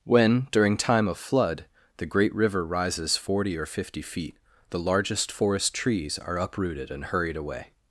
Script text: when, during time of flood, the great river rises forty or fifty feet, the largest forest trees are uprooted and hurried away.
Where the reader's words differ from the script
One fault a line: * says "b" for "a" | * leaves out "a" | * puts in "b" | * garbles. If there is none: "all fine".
all fine